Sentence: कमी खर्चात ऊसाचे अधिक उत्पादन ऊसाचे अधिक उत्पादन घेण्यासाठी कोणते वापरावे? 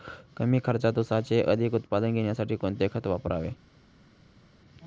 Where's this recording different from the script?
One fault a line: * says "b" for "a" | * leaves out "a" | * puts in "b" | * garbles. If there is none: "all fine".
* leaves out "ऊसाचे अधिक उत्पादन"
* puts in "खत"